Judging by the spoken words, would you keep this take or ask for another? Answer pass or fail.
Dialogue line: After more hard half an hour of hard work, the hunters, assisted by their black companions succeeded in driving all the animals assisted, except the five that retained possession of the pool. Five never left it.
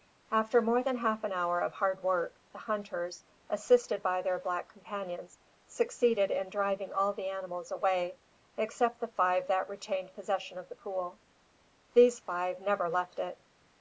fail